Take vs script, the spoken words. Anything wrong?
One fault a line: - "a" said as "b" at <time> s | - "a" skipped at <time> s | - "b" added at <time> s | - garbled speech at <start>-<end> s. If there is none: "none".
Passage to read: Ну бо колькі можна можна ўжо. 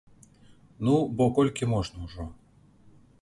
- "можна" skipped at 2.0 s